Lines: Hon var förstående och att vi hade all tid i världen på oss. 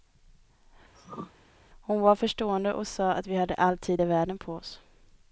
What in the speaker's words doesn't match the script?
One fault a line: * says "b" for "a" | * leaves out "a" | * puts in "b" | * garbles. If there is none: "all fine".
* puts in "sa"